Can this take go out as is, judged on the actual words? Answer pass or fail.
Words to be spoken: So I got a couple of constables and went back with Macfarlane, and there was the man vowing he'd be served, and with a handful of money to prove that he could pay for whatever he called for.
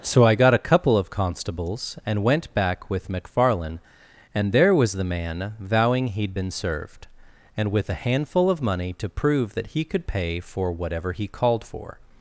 fail